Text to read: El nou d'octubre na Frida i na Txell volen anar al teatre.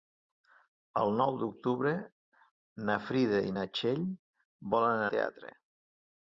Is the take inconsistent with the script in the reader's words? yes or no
yes